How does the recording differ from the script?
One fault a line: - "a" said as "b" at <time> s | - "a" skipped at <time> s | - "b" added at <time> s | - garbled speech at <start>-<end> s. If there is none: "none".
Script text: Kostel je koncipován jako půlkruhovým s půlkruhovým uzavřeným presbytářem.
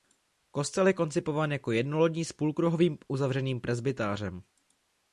- "půlkruhovým" said as "jednolodní" at 1.7 s